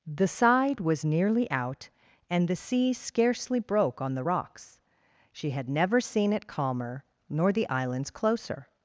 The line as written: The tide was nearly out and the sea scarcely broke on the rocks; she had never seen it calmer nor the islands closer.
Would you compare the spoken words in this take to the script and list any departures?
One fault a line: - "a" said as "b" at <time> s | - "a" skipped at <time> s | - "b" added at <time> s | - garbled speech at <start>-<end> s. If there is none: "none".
- "tide" said as "side" at 0.3 s